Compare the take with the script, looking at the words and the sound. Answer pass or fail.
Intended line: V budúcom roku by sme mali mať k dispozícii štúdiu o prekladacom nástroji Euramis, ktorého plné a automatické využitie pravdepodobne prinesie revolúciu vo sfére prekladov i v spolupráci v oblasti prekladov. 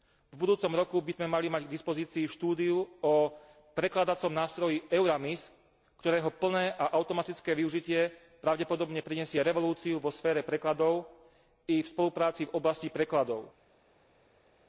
pass